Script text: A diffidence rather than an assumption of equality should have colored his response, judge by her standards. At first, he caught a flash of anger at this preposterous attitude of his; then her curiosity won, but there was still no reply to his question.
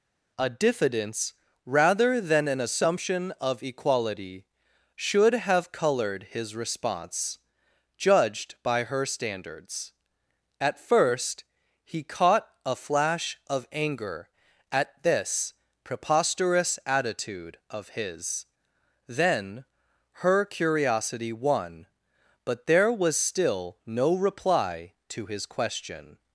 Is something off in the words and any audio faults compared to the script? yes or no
yes